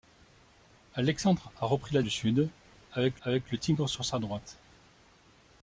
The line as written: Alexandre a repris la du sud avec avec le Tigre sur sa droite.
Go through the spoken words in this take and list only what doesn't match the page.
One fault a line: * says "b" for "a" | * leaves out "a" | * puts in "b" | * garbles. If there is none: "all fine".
all fine